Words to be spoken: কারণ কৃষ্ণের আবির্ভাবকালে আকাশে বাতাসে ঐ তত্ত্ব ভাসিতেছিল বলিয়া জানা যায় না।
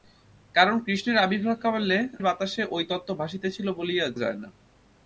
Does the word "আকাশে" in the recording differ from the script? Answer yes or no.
yes